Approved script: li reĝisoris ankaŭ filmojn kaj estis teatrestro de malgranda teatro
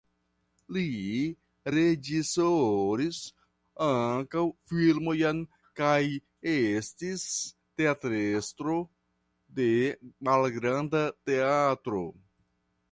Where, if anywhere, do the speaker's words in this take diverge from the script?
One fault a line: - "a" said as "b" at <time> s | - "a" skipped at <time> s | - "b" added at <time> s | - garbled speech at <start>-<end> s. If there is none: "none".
none